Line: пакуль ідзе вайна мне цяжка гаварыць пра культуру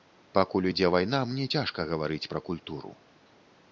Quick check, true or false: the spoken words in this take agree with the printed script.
true